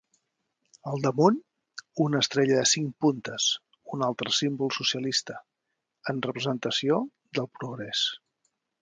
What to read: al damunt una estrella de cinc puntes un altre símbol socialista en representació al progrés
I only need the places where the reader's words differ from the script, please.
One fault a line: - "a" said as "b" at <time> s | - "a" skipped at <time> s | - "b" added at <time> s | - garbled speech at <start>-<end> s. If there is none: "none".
- "al" said as "del" at 7.4 s